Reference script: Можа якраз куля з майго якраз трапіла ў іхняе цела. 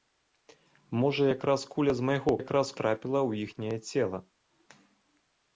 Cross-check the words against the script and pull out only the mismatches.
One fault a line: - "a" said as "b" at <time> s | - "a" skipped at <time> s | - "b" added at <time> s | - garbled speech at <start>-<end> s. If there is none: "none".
none